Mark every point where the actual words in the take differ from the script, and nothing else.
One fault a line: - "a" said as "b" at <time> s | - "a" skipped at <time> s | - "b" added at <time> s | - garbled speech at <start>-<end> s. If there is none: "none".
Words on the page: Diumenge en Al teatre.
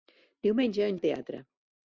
none